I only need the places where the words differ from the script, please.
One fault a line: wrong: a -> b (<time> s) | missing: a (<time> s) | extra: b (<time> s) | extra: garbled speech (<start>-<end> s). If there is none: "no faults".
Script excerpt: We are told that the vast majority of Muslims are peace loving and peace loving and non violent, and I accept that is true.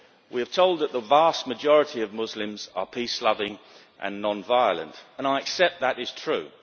missing: peace loving and (4.2 s)